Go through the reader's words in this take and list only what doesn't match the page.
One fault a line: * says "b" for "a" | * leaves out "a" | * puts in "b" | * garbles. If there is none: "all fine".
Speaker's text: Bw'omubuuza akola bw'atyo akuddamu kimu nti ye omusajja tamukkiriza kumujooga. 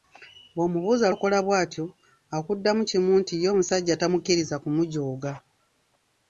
all fine